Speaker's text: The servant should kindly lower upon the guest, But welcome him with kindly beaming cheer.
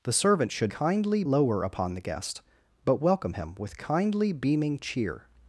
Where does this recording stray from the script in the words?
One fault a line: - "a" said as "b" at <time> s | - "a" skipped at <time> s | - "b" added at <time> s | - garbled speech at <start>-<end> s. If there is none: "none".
none